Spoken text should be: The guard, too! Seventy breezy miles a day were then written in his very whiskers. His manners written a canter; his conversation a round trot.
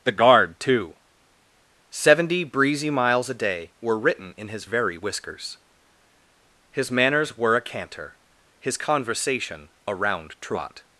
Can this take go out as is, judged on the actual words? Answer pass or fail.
fail